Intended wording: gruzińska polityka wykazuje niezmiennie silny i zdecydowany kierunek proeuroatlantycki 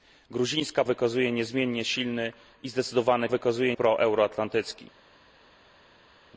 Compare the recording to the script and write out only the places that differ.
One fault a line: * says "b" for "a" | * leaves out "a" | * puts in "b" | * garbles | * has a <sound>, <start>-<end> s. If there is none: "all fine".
* leaves out "polityka"
* says "wykazuje" for "kierunek"